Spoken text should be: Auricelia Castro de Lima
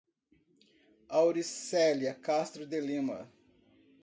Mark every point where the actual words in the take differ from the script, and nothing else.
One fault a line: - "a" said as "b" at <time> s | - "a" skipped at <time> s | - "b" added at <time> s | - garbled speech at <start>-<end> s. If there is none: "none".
none